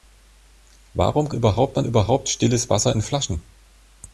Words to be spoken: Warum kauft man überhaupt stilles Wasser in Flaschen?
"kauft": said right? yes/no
no